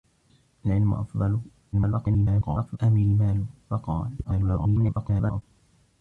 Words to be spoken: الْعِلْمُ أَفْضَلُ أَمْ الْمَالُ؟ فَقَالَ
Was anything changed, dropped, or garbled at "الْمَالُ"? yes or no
no